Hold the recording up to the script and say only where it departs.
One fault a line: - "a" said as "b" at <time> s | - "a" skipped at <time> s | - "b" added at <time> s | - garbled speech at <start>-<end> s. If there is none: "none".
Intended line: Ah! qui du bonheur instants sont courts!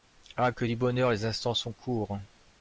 - "qui" said as "que" at 0.5 s
- "les" added at 1.1 s